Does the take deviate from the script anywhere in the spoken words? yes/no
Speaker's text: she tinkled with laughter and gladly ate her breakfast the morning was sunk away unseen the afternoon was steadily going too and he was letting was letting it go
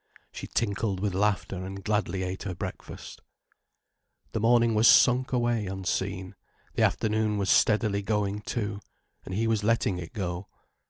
yes